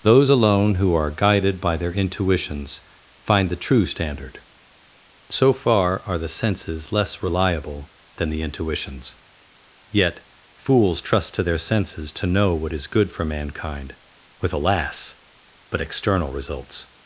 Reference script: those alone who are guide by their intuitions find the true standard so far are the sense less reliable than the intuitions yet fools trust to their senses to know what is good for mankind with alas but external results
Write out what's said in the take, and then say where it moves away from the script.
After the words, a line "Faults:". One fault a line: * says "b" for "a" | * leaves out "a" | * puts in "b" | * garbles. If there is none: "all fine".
those alone who are guided by their intuitions find the true standard so far are the senses less reliable than the intuitions yet fools trust to their senses to know what is good for mankind with alas but external results
Faults:
* says "guided" for "guide"
* says "senses" for "sense"